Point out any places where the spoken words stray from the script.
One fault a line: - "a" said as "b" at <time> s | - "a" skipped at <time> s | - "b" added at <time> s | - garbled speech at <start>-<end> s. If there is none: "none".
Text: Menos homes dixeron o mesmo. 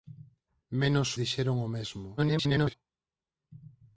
- "homes" skipped at 1.1 s
- garbled speech at 2.2-2.7 s